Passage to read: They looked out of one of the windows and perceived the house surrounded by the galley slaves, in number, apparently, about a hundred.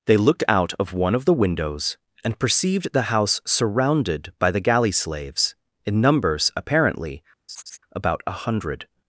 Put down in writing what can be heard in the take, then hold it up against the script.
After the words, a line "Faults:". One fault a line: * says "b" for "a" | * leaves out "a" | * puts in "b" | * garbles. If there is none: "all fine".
They looked out of one of the windows and perceived the house surrounded by the galley slaves, in numbers, apparently, about a hundred.
Faults:
* says "numbers" for "number"